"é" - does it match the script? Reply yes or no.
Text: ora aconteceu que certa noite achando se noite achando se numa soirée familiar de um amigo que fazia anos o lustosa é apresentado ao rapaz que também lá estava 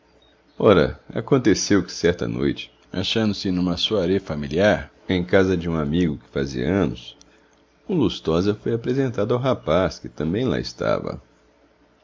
no